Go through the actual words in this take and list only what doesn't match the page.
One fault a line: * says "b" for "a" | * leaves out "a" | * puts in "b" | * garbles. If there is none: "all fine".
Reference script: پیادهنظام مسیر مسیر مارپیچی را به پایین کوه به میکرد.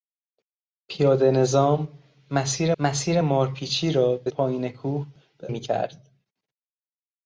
all fine